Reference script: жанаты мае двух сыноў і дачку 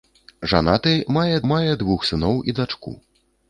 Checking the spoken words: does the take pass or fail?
fail